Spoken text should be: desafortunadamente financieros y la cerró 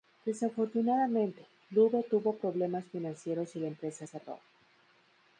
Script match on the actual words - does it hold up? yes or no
no